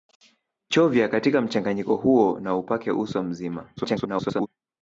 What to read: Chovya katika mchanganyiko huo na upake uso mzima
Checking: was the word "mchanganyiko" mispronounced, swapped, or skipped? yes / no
no